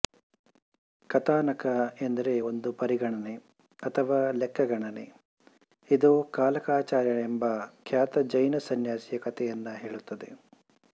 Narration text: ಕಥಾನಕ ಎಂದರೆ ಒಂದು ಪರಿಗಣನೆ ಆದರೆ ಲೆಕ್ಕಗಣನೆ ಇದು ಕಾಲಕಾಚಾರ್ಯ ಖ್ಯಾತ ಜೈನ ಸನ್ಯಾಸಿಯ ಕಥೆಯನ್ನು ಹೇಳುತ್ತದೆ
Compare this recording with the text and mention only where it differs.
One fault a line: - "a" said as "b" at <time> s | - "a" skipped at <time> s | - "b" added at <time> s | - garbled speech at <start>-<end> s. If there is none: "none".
- "ಆದರೆ" said as "ಅಥವಾ" at 3.8 s
- "ಎಂಬ" added at 7.2 s